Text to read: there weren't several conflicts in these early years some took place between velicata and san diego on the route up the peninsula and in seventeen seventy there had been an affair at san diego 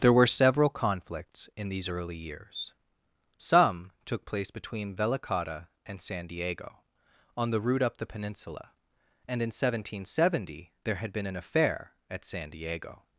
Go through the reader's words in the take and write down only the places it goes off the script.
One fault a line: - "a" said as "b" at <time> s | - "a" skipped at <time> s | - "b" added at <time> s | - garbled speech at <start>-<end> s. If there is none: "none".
- "weren't" said as "were" at 0.1 s